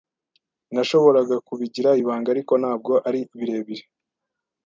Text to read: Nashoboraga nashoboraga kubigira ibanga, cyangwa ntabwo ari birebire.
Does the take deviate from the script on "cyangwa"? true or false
true